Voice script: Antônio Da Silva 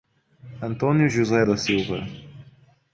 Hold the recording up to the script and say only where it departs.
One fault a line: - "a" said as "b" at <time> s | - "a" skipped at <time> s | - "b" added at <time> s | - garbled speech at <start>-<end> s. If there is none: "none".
- "José" added at 1.1 s